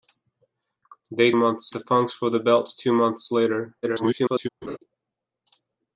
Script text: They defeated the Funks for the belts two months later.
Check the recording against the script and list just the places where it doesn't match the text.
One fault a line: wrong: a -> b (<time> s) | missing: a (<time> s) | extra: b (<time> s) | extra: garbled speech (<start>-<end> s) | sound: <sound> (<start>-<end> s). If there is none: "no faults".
wrong: defeated -> months (1.4 s)
extra: garbled speech (3.8-4.5 s)
sound: laugh (4.6-4.8 s)